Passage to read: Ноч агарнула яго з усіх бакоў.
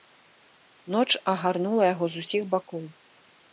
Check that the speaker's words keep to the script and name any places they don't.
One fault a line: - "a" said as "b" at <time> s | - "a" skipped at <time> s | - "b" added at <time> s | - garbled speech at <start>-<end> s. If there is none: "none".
none